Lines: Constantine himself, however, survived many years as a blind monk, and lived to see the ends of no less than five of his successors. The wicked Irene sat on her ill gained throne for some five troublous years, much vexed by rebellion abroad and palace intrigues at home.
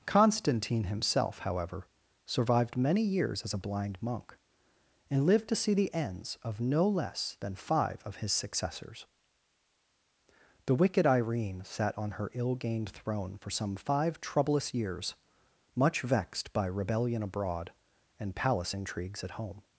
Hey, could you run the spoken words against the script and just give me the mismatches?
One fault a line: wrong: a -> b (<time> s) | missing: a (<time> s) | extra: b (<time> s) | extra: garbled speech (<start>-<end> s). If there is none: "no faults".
no faults